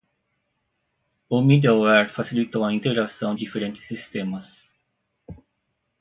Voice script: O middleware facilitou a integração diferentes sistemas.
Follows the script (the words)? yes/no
yes